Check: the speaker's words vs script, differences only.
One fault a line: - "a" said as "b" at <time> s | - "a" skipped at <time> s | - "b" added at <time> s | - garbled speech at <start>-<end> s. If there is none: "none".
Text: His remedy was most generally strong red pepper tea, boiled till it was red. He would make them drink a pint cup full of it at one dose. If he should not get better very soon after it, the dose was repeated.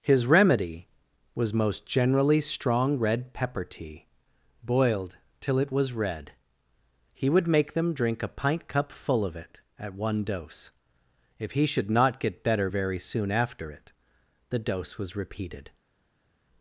none